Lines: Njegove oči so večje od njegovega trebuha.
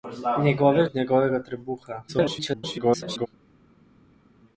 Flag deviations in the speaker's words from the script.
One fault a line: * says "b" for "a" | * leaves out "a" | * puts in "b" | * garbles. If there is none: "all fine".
* leaves out "oči so večje"
* garbles